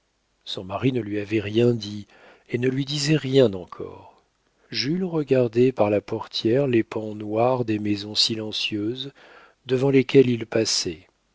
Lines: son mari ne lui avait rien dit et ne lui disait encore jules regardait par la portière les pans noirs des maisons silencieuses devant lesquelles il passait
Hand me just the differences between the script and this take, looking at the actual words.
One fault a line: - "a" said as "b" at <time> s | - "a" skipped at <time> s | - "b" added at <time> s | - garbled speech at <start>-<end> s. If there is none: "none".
- "rien" added at 3.2 s